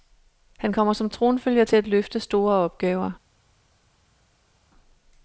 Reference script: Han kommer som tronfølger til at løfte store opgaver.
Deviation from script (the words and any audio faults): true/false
false